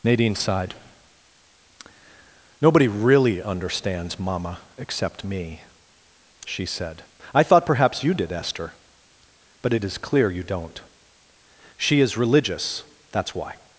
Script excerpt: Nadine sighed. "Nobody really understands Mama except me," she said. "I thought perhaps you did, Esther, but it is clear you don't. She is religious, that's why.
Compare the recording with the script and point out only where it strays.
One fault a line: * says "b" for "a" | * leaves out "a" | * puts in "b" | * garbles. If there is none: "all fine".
all fine